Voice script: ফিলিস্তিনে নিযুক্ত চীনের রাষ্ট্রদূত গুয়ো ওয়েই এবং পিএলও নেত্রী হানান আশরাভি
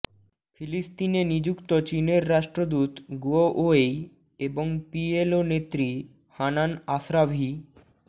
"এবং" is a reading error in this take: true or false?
false